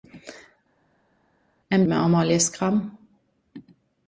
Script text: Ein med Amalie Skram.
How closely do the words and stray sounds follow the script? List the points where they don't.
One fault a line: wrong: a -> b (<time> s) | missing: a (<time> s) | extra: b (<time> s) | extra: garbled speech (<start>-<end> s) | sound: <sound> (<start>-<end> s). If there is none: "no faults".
no faults